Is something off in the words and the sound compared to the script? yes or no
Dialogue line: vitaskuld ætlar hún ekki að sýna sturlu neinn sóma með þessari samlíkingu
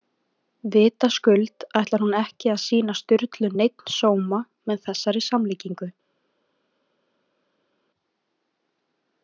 no